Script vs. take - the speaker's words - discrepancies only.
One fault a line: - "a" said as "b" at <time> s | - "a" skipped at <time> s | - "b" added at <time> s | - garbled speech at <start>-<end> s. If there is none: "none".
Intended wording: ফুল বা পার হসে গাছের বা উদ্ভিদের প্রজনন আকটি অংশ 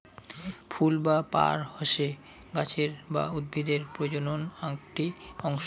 none